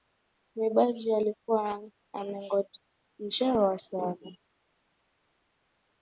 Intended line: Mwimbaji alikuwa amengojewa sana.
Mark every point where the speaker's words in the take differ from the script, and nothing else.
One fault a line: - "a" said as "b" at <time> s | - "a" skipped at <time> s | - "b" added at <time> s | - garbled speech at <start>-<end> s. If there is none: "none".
none